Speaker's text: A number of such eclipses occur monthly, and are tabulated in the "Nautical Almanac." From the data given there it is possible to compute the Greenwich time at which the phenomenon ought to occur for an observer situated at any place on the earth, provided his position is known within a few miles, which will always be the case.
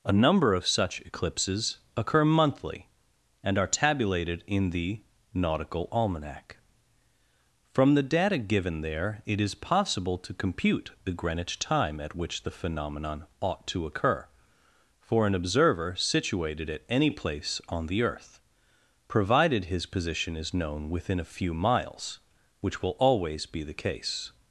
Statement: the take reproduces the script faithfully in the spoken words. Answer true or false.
true